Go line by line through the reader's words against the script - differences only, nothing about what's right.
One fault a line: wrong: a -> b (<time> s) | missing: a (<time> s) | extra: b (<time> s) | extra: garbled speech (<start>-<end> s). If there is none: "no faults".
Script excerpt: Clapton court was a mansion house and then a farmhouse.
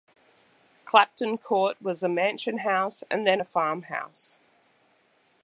no faults